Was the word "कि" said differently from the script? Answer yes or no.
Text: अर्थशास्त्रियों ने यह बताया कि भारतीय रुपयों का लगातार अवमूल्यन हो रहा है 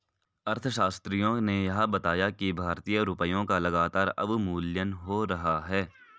no